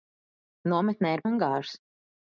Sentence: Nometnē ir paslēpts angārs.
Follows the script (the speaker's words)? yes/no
no